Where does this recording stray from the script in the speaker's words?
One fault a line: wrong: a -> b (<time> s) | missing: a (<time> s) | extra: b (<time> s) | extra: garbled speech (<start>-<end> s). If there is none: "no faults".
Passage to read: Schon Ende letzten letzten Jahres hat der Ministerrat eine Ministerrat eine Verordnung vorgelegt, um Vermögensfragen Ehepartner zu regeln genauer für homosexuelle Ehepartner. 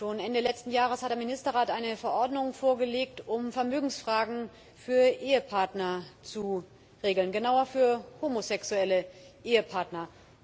missing: letzten (0.7 s)
missing: Ministerrat eine (2.0 s)
extra: für (4.7 s)